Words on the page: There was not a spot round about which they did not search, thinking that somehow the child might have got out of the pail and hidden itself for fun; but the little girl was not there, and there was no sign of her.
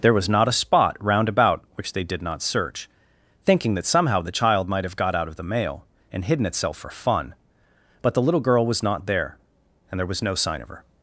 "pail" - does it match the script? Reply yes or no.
no